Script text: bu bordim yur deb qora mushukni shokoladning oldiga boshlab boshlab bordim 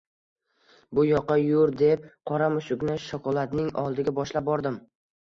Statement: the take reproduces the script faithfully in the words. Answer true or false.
false